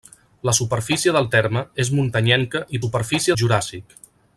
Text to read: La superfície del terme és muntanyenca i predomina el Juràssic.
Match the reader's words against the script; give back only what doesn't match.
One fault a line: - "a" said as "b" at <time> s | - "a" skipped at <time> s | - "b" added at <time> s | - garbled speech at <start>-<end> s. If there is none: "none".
- "predomina" said as "superfície" at 2.8 s